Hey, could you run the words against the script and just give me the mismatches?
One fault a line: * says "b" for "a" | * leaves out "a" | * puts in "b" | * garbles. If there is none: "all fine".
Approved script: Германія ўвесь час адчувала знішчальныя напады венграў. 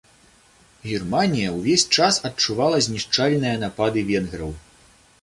all fine